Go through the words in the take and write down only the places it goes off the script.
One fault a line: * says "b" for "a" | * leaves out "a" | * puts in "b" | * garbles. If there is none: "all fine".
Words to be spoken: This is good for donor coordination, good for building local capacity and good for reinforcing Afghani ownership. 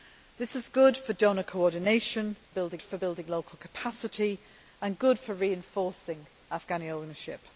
* says "building" for "good"